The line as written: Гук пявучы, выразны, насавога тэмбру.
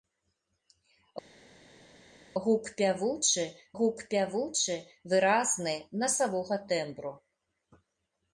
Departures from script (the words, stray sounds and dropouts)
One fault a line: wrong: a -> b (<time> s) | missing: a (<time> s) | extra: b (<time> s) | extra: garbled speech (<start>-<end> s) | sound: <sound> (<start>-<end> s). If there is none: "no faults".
extra: гук пявучы (3.8 s)